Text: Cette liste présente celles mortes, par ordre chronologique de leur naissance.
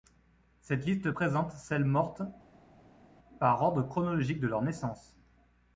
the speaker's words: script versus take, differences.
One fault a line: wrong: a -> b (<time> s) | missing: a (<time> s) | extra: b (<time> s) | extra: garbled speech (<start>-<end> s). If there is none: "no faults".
no faults